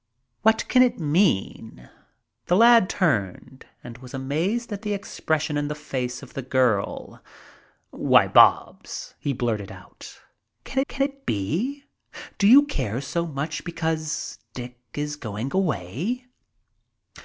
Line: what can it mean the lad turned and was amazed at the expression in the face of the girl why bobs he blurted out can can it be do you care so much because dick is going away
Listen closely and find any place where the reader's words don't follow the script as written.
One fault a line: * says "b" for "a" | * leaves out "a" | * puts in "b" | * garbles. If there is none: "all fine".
all fine